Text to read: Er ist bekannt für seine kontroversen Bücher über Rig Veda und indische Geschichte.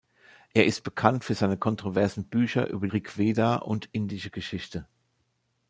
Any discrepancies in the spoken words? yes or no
no